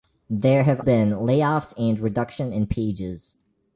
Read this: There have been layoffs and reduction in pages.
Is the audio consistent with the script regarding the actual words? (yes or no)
yes